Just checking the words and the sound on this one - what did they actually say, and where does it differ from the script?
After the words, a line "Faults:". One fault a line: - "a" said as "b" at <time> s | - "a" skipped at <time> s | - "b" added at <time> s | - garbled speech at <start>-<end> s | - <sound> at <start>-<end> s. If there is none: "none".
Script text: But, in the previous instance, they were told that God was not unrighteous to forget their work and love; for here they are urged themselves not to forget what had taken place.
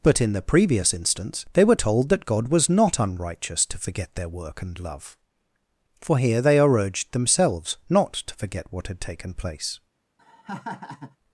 But, in the previous instance, they were told that God was not unrighteous to forget their work and love; for here they are urged themselves not to forget what had taken place.
Faults:
- laugh at 10.2-11.2 s